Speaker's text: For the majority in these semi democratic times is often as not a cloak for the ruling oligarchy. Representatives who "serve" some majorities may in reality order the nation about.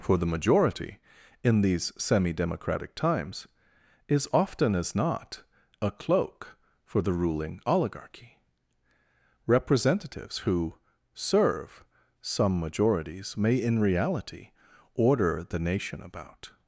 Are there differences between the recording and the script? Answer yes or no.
no